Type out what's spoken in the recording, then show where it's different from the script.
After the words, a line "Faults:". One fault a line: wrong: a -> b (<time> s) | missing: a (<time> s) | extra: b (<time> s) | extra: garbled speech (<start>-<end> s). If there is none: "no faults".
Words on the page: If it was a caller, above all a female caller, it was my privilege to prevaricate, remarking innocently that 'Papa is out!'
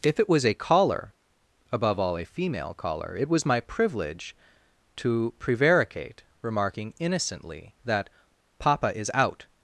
If it was a caller, above all a female caller, it was my privilege to prevaricate, remarking innocently that 'Papa is out!'
Faults:
no faults